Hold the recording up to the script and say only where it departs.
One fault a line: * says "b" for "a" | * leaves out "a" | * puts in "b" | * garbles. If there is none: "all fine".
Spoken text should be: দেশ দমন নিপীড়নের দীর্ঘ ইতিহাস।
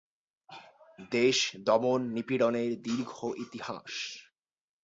all fine